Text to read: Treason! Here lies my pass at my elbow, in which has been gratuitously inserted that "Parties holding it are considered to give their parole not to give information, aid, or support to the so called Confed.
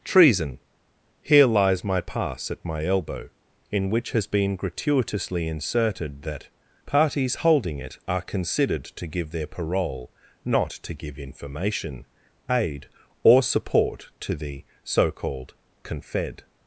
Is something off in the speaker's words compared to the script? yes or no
no